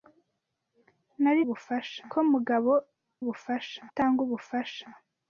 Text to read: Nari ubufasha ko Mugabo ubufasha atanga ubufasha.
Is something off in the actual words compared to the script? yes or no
no